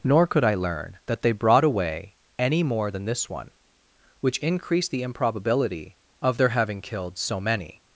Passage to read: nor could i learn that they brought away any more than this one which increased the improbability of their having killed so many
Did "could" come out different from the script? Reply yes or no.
no